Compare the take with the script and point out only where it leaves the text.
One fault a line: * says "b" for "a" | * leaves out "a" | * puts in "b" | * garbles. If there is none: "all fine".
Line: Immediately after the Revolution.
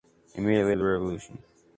* leaves out "after"